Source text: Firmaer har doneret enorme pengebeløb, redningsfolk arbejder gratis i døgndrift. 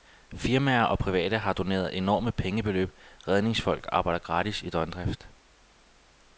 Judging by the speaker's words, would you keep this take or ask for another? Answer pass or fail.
fail